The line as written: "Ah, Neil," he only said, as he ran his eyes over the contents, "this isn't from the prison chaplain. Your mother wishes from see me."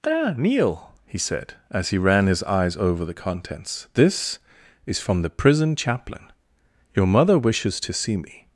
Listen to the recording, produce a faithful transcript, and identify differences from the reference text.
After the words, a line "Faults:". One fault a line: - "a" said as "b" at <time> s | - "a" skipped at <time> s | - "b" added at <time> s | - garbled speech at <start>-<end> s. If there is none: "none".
"Ah, Neil," he said, as he ran his eyes over the contents, "this is from the prison chaplain. Your mother wishes to see me."
Faults:
- "only" skipped at 1.2 s
- "isn't" said as "is" at 4.8 s
- "from" said as "to" at 7.8 s